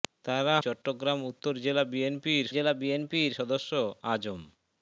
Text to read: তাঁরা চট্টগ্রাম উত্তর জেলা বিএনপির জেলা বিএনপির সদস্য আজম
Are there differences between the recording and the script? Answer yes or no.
no